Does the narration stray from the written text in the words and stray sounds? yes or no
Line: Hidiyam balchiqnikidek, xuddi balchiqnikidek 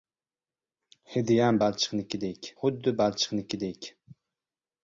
no